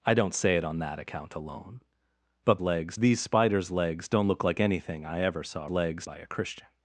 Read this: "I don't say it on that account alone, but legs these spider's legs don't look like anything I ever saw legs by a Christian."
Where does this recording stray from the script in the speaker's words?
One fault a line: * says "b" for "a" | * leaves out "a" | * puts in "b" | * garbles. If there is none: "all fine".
all fine